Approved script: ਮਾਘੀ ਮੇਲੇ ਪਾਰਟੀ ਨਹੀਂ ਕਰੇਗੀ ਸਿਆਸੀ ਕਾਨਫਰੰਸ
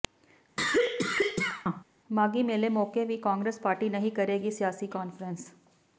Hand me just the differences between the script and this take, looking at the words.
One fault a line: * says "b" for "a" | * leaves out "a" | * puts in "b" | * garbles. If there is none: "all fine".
* puts in "ਮੌਕੇ ਵੀ ਕਾਂਗਰਸ"